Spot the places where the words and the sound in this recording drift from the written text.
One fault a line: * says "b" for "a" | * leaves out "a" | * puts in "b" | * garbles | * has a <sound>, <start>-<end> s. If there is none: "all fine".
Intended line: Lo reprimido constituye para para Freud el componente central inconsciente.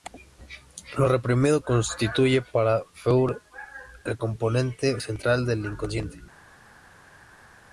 * leaves out "para"
* puts in "del"